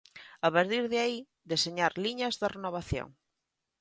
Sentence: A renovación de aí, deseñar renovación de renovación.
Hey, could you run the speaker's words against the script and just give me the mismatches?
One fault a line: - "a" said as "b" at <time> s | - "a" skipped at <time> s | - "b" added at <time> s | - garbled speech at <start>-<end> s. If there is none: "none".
- "renovación" said as "partir" at 0.6 s
- "renovación" said as "liñas" at 2.0 s